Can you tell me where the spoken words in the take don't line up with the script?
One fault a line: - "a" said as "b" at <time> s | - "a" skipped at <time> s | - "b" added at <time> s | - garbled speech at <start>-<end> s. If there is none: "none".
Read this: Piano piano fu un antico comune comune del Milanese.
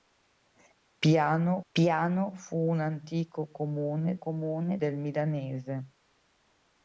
none